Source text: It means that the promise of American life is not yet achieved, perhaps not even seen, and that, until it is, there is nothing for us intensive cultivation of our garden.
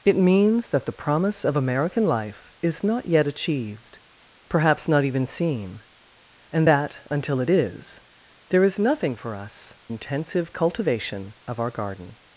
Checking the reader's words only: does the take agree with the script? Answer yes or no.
yes